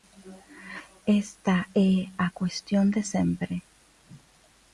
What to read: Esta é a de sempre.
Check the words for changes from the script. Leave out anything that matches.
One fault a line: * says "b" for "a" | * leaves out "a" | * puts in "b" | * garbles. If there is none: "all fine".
* puts in "cuestión"